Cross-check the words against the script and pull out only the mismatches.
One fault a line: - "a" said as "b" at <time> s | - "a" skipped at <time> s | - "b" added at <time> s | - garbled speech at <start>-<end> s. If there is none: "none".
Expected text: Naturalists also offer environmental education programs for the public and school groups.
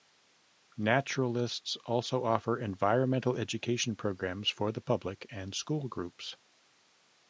none